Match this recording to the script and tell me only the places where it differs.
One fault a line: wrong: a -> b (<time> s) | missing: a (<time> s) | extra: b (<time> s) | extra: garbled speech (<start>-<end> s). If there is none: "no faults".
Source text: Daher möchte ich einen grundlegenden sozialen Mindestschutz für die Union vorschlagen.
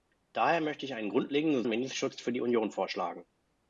missing: sozialen (1.6 s)